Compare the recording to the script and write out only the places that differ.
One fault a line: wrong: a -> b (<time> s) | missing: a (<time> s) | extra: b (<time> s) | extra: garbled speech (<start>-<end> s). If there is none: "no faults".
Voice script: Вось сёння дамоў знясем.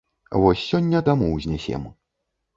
no faults